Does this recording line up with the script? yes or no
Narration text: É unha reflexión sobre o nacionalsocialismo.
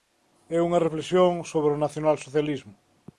yes